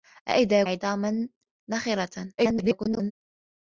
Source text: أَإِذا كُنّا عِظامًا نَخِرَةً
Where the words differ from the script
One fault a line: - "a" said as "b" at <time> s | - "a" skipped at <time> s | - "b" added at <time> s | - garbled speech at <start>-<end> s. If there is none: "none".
- "كُنّا" skipped at 0.6 s
- garbled speech at 2.4-3.1 s